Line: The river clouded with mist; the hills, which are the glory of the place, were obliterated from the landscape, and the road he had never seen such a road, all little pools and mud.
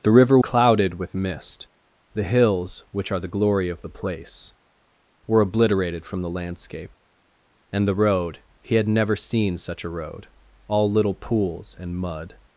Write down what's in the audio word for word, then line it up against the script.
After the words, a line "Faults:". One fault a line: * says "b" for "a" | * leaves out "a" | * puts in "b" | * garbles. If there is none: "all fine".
The river clouded with mist; the hills, which are the glory of the place, were obliterated from the landscape, and the road he had never seen such a road, all little pools and mud.
Faults:
all fine